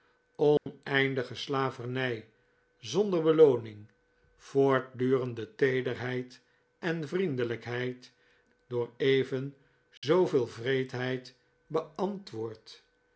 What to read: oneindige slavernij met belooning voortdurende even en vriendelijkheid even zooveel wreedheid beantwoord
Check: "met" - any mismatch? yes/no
yes